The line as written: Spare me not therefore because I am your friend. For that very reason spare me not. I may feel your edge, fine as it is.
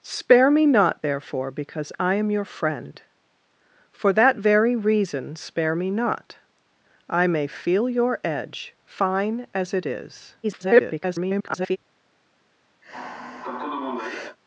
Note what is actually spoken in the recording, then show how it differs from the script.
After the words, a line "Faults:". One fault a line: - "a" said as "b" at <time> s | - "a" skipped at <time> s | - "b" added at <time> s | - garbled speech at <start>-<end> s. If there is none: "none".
Spare me not therefore because I am your friend. For that very reason spare me not. I may feel your edge, fine as it is. [garbled]
Faults:
- garbled speech at 10.4-11.8 s